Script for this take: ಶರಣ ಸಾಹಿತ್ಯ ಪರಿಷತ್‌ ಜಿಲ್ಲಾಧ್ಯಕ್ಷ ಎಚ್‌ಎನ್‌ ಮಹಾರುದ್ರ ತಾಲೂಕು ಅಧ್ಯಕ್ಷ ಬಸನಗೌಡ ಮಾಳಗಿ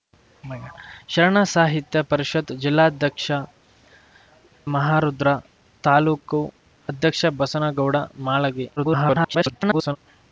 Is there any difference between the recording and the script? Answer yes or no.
yes